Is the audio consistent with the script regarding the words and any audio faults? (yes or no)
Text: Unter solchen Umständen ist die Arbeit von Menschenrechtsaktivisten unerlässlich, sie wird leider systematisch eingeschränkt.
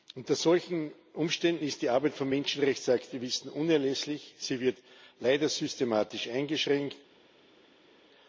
yes